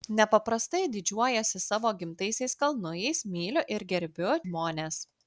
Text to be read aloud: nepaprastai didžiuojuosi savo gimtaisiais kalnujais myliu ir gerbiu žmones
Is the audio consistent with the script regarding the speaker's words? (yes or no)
yes